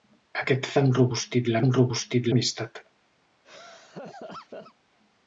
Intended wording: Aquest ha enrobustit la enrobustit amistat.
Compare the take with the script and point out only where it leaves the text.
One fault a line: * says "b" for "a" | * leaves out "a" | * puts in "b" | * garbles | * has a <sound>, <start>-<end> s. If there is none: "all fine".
* has a laugh, 3.4-4.7 s